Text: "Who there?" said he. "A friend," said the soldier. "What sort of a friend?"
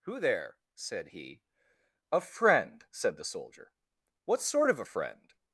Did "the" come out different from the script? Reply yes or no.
no